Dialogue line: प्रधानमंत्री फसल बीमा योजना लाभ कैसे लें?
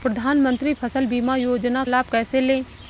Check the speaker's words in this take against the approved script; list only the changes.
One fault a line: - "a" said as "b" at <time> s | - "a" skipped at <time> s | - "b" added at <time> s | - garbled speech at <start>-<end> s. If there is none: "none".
none